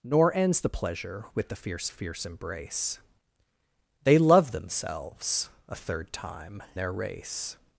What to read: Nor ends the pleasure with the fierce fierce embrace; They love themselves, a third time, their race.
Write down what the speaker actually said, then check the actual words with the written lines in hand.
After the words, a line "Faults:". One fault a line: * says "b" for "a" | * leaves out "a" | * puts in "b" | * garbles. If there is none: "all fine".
Nor ends the pleasure with the fierce fierce embrace; They love themselves, a third time, their race.
Faults:
all fine